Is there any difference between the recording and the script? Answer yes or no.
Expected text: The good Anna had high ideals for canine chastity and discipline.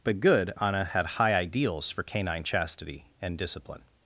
yes